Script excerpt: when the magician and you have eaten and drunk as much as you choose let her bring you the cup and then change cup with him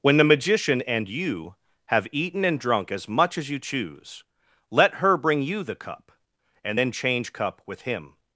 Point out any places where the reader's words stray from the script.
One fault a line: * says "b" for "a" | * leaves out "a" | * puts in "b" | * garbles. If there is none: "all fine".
all fine